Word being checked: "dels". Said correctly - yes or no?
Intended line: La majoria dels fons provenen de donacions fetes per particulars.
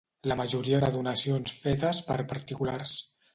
no